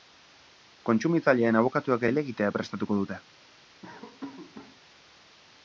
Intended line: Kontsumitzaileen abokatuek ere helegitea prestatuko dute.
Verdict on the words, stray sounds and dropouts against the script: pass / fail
fail